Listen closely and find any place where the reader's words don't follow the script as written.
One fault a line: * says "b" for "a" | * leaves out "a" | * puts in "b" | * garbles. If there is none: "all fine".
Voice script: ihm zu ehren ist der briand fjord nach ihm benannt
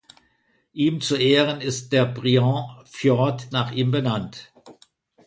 all fine